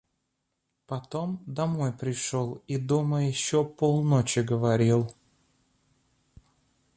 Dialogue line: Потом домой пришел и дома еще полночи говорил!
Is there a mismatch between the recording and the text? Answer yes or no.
no